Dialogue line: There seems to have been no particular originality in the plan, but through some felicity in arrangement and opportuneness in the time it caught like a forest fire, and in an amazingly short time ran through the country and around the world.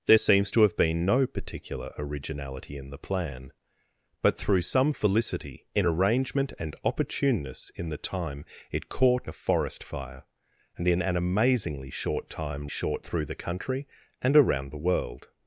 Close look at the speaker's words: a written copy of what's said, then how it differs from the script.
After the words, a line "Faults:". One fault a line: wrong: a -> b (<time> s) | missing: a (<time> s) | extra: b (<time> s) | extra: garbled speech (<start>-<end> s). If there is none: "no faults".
There seems to have been no particular originality in the plan, but through some felicity in arrangement and opportuneness in the time it caught a forest fire, and in an amazingly short time short through the country and around the world.
Faults:
missing: like (9.3 s)
wrong: ran -> short (12.7 s)